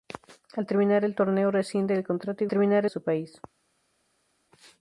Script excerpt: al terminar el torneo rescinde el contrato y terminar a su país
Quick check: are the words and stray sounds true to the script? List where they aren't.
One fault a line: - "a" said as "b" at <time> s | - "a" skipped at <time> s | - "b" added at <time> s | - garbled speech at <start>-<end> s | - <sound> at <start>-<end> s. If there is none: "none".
none